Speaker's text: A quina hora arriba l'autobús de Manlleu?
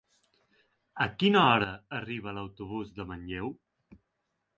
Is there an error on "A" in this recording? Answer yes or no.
no